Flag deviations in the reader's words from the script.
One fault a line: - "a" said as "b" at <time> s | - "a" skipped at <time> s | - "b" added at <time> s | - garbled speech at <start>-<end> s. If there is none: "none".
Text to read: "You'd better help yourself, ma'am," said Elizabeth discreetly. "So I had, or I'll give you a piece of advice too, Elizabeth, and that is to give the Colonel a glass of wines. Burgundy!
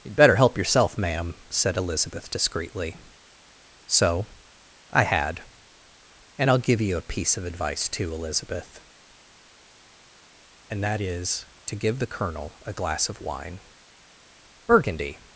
- "or" said as "and" at 6.4 s
- "wines" said as "wine" at 13.2 s